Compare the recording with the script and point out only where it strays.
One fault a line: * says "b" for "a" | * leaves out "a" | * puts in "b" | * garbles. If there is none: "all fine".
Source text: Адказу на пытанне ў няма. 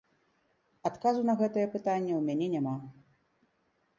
* puts in "гэтае"
* puts in "мяне"